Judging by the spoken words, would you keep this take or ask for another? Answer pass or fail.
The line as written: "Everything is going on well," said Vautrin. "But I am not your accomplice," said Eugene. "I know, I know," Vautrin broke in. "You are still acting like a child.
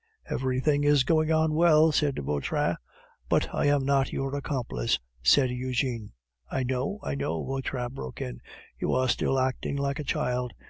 pass